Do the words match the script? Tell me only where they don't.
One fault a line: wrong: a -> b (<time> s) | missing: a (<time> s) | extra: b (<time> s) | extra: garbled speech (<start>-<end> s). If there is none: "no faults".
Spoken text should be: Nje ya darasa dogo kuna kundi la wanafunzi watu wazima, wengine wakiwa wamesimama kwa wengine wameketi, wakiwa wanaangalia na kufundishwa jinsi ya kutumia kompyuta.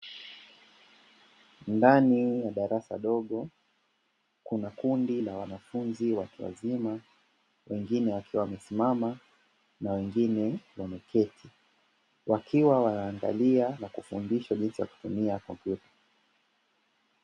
wrong: Nje -> Ndani (1.7 s)
wrong: kwa -> na (9.8 s)